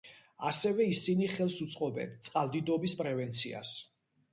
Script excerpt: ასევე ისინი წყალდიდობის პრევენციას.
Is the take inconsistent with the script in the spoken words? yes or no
yes